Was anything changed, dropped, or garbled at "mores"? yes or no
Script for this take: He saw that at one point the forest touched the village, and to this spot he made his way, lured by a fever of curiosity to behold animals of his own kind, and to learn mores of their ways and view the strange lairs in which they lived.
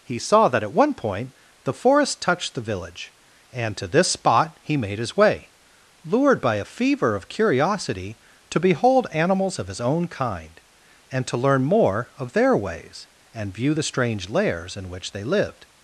yes